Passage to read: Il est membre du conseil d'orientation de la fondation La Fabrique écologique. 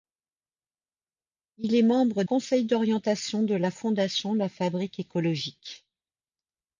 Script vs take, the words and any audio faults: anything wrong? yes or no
yes